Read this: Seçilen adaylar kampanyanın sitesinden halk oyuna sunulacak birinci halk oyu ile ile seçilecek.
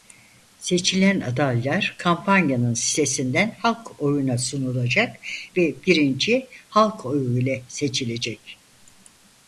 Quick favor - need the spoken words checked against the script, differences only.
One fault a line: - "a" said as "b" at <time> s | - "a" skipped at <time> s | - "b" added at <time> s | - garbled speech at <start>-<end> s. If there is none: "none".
- "ve" added at 5.6 s
- "ile" skipped at 7.7 s